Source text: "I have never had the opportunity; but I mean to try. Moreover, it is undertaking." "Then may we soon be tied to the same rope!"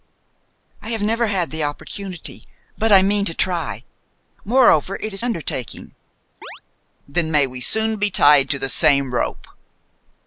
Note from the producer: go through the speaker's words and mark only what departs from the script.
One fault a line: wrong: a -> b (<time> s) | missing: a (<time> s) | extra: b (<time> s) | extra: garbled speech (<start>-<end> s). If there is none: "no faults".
no faults